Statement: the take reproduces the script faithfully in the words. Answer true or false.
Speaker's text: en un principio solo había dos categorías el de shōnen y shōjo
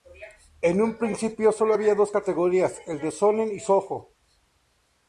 true